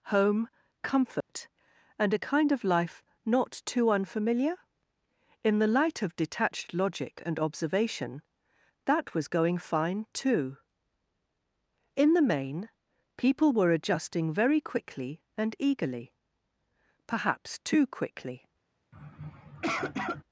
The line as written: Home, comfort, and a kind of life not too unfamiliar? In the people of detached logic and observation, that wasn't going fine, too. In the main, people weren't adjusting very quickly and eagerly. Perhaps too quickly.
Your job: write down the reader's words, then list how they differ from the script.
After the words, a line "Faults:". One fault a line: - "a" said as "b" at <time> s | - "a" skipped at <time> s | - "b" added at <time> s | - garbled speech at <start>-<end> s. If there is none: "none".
Home, comfort, and a kind of life not too unfamiliar? In the light of detached logic and observation, that was going fine, too. In the main, people were adjusting very quickly and eagerly. Perhaps too quickly.
Faults:
- "people" said as "light" at 5.7 s
- "wasn't" said as "was" at 9.1 s
- "weren't" said as "were" at 13.5 s